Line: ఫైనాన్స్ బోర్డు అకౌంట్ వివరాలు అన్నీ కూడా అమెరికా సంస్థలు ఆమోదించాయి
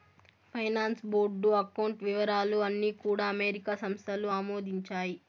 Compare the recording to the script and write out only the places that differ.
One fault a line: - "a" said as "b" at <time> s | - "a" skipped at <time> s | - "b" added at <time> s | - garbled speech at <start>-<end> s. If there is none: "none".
none